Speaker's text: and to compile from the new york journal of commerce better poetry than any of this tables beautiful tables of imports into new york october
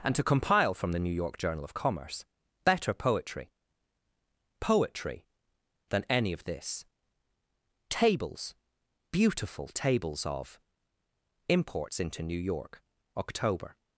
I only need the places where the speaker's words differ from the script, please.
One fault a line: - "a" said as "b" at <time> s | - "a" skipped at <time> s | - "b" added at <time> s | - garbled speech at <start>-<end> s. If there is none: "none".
- "poetry" added at 4.6 s